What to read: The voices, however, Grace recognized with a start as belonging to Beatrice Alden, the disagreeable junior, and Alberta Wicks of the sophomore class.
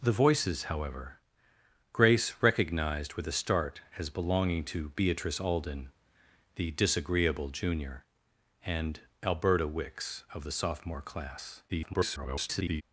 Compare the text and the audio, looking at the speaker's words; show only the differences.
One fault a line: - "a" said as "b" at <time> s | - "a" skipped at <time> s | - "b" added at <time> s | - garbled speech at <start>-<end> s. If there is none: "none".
- garbled speech at 11.7-12.8 s